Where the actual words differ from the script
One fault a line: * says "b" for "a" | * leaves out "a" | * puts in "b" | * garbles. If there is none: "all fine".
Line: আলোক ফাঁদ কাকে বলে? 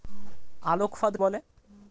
* leaves out "কাকে"